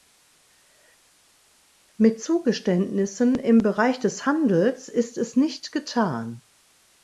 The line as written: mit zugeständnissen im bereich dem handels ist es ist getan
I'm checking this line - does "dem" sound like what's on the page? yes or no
no